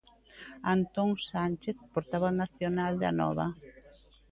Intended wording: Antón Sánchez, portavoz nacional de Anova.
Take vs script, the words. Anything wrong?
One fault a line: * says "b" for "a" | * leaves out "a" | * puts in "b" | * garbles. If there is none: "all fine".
all fine